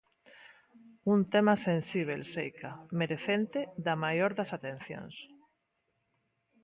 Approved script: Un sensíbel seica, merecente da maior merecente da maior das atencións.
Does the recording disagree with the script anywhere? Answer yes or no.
yes